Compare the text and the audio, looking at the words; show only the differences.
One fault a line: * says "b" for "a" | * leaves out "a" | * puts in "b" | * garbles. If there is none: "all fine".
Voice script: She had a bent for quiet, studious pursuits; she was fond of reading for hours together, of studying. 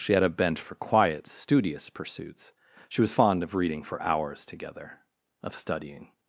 all fine